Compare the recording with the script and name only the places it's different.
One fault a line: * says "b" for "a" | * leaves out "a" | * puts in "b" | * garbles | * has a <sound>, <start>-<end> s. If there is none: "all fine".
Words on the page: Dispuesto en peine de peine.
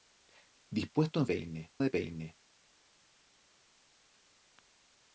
all fine